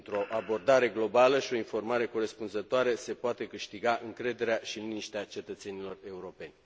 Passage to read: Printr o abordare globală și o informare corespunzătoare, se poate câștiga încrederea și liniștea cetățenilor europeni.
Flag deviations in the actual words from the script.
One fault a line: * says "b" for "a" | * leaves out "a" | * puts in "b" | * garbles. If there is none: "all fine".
all fine